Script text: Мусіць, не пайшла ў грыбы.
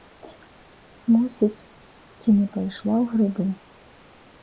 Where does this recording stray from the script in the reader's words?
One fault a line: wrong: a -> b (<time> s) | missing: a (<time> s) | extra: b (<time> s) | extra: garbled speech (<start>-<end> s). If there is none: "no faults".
extra: ці (2.2 s)